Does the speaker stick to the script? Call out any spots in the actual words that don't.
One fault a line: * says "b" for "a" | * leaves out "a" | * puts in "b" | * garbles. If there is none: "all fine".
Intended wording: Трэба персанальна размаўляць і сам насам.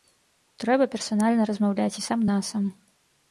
all fine